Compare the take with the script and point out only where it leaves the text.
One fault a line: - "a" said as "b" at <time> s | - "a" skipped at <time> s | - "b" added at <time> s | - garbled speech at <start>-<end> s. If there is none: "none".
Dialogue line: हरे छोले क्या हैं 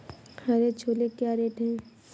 - "रेट" added at 1.3 s